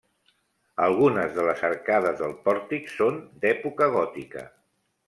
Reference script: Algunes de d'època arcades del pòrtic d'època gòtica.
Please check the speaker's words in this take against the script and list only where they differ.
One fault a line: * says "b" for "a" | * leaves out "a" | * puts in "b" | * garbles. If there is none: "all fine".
* says "les" for "d'època"
* puts in "són"